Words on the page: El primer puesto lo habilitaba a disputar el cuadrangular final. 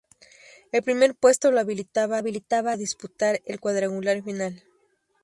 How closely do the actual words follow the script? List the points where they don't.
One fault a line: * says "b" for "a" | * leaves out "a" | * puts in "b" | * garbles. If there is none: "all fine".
* puts in "habilitaba"